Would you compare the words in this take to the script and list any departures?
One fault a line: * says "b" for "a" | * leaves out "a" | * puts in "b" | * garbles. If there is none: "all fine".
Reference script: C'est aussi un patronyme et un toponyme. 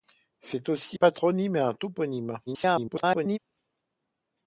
* leaves out "un"
* garbles